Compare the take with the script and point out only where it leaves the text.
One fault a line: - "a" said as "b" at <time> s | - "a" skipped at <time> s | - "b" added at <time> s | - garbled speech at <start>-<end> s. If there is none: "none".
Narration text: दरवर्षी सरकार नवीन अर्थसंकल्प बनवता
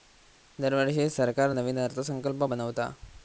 none